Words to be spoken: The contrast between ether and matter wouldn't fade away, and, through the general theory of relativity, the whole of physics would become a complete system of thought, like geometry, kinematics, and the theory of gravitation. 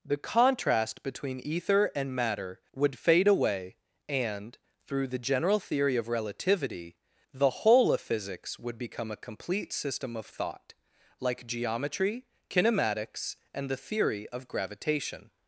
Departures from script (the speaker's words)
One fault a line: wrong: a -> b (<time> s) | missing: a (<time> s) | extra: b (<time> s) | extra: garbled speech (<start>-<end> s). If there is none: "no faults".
wrong: wouldn't -> would (2.7 s)